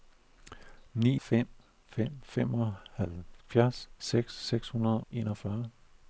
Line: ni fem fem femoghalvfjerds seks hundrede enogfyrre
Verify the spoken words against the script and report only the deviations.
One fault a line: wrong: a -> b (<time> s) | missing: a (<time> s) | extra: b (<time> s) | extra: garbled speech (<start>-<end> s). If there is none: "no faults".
no faults